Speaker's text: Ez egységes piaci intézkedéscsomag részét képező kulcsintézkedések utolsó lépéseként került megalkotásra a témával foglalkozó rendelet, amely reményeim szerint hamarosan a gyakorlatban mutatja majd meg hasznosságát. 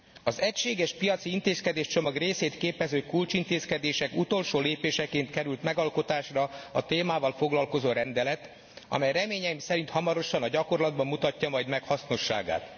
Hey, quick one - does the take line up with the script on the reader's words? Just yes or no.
no